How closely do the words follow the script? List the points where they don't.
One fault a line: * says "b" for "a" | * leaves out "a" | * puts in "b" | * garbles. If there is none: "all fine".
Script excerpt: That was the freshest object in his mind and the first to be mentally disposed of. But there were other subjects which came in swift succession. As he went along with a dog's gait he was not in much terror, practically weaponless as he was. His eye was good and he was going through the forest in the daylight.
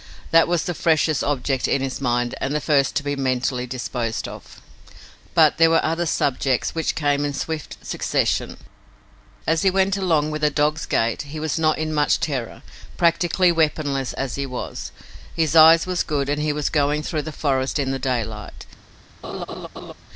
all fine